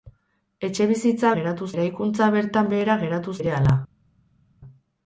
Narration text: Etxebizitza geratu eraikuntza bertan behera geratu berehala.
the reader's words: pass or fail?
pass